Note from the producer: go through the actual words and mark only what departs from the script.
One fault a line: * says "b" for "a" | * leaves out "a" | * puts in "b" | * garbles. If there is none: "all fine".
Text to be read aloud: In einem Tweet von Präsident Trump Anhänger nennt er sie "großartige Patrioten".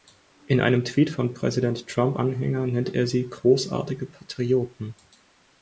all fine